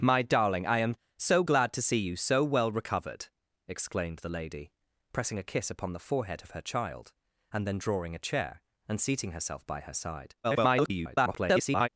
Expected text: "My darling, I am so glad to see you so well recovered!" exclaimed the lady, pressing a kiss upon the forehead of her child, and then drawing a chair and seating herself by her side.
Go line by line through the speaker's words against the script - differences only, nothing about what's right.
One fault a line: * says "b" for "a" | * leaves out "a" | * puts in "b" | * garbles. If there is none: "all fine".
* garbles